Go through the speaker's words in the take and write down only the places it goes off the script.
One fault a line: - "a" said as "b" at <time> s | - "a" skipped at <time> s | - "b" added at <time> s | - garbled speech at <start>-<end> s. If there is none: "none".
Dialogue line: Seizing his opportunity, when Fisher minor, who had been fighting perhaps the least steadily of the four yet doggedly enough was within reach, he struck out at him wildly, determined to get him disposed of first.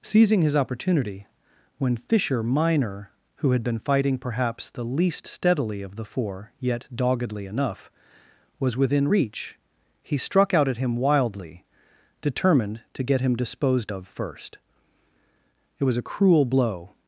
- "It was a cruel blow" added at 15.8 s